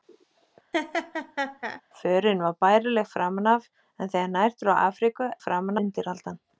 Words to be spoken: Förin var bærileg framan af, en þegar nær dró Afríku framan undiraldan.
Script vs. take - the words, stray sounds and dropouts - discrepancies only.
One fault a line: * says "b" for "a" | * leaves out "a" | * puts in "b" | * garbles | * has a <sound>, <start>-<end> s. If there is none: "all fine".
* has a laugh, 0.7-1.8 s